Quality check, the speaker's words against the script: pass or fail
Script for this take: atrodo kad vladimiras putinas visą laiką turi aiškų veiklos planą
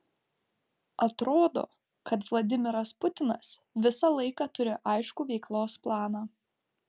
pass